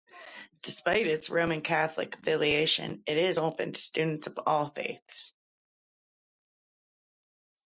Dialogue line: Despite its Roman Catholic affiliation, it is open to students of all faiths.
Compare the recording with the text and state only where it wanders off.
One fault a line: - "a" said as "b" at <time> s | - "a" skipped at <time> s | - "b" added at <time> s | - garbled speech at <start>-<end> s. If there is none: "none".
none